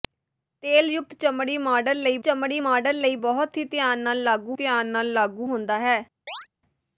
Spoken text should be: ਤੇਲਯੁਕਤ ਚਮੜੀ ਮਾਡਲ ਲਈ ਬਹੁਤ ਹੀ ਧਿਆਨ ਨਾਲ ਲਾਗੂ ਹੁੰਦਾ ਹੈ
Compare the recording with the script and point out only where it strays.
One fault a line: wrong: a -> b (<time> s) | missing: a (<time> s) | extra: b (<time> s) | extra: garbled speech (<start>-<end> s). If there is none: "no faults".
extra: ਚਮੜੀ ਮਾਡਲ ਲਈ (2.2 s)
extra: ਧਿਆਨ ਨਾਲ ਲਾਗੂ (4.5 s)